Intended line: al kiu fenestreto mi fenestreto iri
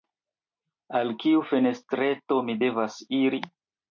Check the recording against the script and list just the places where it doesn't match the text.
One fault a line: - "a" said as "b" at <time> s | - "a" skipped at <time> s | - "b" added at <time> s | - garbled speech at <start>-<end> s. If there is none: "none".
- "fenestreto" said as "devas" at 2.6 s